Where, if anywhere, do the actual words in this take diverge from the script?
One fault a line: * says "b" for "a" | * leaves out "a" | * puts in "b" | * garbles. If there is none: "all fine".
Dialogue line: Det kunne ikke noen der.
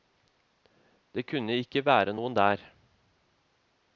* puts in "være"